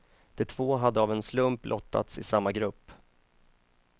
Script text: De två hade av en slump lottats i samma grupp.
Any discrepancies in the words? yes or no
no